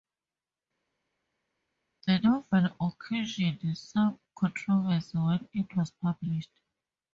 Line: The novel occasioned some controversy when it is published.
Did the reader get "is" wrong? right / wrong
wrong